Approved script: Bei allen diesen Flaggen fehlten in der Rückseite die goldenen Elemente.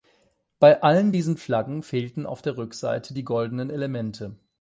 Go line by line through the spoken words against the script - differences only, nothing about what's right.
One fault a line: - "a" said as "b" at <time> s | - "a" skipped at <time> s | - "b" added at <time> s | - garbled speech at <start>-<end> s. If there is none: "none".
- "in" said as "auf" at 2.3 s